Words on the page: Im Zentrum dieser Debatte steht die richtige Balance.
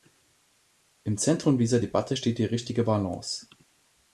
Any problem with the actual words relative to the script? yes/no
no